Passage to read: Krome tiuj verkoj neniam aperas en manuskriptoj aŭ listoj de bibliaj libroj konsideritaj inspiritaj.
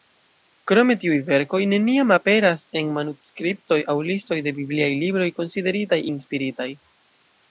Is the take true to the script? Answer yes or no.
yes